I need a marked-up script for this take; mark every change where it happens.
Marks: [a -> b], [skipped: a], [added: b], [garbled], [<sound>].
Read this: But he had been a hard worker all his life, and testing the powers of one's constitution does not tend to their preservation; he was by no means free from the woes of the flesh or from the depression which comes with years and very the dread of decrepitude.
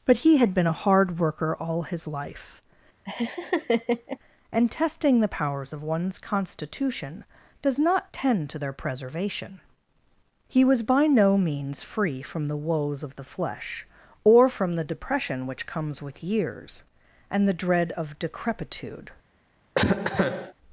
But he had been a hard worker all his life, [laugh] and testing the powers of one's constitution does not tend to their preservation; he was by no means free from the woes of the flesh or from the depression which comes with years and [skipped: very] the dread of decrepitude. [cough]